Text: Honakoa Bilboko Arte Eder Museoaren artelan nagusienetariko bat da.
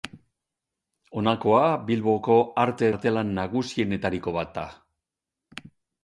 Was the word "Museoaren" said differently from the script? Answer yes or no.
yes